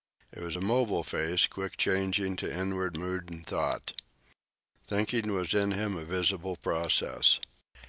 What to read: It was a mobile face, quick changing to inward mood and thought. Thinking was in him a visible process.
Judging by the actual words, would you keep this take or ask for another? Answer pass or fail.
pass